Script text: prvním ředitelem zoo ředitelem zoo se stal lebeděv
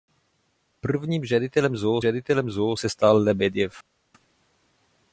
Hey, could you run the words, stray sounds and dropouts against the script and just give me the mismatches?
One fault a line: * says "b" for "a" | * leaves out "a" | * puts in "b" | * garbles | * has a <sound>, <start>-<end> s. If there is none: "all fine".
all fine